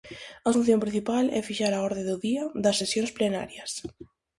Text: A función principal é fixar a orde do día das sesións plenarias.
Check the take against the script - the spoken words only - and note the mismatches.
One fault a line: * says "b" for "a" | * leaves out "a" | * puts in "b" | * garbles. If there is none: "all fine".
all fine